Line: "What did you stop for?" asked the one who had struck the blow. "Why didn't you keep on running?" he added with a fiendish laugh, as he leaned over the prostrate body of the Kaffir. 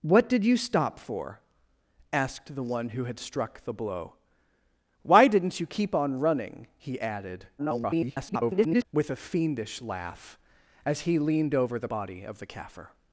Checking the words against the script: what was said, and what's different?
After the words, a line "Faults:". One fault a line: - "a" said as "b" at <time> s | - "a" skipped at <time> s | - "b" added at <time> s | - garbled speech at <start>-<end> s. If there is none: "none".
"What did you stop for?" asked the one who had struck the blow. "Why didn't you keep on running?" he added [garbled] with a fiendish laugh, as he leaned over the body of the Kaffir.
Faults:
- garbled speech at 7.6-8.8 s
- "prostrate" skipped at 11.9 s